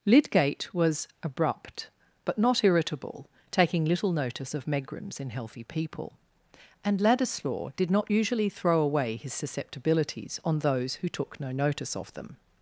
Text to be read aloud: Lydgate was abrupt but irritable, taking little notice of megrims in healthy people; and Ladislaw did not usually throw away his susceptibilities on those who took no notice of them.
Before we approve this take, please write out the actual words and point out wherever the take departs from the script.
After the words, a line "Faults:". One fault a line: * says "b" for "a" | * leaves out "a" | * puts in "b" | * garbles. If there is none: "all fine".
Lydgate was abrupt but not irritable, taking little notice of megrims in healthy people; and Ladislaw did not usually throw away his susceptibilities on those who took no notice of them.
Faults:
* puts in "not"